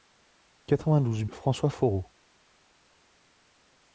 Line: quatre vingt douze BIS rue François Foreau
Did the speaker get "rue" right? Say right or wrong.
wrong